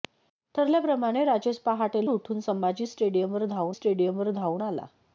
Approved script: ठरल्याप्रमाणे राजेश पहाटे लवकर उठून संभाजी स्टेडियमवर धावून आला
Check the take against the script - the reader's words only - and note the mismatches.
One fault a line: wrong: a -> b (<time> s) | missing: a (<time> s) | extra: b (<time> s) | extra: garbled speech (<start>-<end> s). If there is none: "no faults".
missing: लवकर (2.0 s)
extra: स्टेडियमवर धावून (3.7 s)